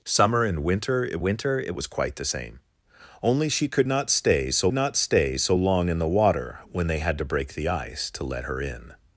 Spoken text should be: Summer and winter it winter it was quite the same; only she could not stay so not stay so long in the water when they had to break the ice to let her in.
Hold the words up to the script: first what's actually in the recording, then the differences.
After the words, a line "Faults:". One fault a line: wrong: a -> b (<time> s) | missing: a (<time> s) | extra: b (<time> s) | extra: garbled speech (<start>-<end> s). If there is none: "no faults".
Summer and winter it winter it was quite the same; only she could not stay so not stay so long in the water when they had to break the ice to let her in.
Faults:
no faults